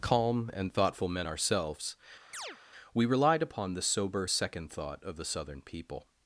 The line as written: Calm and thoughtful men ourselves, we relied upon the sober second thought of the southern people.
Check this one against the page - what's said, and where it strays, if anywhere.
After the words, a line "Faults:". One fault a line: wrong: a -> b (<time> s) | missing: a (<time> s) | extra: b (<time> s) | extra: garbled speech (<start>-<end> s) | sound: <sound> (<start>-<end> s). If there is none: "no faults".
Calm and thoughtful men ourselves, we relied upon the sober second thought of the southern people.
Faults:
sound: chirp (2.3-2.6 s)